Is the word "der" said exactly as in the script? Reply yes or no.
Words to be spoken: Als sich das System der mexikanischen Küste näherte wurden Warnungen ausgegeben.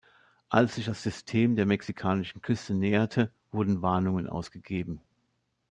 yes